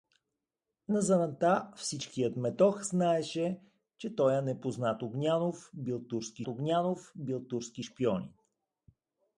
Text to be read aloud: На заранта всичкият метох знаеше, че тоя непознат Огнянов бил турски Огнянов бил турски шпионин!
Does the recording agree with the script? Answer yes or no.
yes